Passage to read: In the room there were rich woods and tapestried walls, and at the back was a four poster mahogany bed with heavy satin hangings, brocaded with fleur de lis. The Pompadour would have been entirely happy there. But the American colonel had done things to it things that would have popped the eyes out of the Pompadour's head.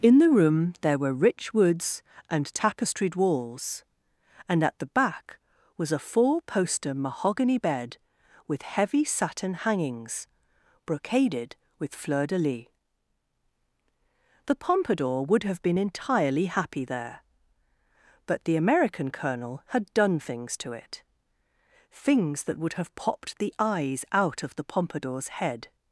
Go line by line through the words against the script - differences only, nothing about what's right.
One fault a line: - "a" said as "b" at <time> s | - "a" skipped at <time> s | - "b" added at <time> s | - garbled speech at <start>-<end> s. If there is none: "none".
none